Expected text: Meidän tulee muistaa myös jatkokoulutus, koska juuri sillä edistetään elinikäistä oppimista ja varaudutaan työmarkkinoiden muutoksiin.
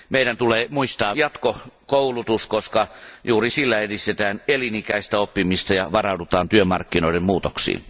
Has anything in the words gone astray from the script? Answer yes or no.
yes